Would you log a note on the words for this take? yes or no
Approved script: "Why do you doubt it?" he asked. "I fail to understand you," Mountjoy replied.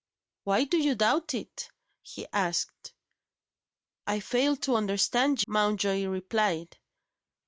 yes